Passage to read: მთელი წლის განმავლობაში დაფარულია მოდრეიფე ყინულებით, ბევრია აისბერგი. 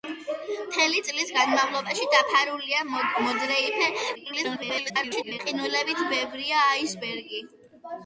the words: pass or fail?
fail